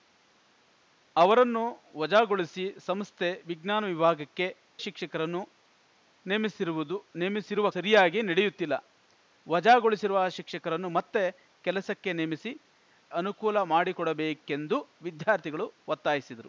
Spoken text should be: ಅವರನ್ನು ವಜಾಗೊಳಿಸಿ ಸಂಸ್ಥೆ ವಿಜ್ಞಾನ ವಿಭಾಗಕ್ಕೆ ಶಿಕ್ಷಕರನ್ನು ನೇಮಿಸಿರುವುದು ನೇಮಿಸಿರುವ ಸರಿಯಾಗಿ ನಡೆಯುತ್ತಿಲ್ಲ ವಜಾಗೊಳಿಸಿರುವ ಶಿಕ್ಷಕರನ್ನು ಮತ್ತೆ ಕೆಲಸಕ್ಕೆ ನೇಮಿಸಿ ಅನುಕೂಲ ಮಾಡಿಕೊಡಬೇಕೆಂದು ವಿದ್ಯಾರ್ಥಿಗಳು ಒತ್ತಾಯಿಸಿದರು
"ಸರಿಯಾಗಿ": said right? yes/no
yes